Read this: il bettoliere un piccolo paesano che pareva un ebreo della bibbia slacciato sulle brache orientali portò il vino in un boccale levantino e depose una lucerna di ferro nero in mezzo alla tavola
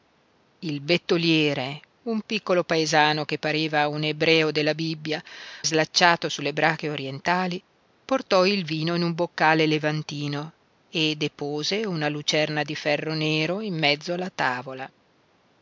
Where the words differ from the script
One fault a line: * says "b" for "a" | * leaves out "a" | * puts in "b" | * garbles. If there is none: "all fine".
all fine